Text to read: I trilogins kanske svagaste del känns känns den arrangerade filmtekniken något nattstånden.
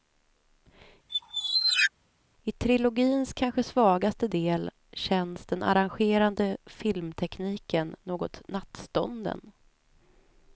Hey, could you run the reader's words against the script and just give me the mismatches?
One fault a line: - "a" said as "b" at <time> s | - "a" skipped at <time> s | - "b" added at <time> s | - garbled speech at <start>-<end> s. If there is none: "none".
- "känns" skipped at 5.5 s